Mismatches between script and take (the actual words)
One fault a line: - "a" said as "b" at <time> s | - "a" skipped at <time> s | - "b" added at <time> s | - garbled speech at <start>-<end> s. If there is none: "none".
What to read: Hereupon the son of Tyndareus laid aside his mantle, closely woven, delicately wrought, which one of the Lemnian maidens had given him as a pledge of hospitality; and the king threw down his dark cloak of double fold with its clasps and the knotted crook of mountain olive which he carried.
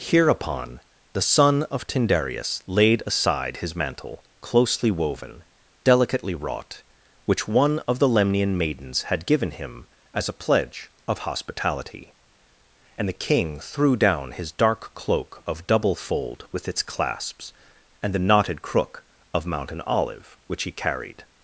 none